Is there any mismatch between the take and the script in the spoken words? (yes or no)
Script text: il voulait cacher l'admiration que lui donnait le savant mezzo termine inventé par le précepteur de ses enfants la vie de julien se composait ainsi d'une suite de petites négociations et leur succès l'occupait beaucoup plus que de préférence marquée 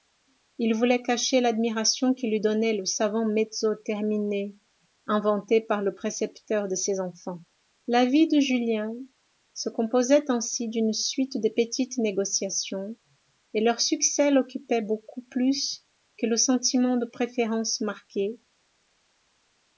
yes